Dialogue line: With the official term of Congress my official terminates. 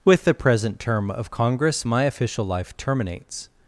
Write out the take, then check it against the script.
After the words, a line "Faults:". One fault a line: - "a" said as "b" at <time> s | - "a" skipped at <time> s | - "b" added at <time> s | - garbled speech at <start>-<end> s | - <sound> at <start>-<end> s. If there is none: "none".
With the present term of Congress my official life terminates.
Faults:
- "official" said as "present" at 0.3 s
- "life" added at 2.4 s